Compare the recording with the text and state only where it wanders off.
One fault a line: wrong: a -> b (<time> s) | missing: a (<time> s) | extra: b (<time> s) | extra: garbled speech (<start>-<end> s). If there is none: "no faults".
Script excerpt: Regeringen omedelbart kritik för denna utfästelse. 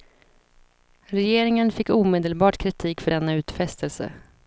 extra: fick (1.7 s)